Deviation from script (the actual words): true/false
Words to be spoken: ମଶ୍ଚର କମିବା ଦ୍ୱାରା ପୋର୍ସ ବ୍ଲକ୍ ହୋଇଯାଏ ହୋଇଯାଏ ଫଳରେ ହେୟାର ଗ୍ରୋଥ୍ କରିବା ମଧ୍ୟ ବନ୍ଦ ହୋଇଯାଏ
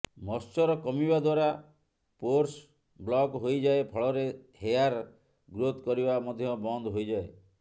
true